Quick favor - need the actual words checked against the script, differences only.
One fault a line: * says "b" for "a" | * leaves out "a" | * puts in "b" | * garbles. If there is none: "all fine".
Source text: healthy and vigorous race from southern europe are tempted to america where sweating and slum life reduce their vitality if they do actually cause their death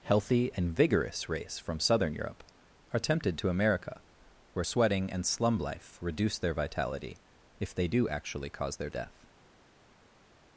all fine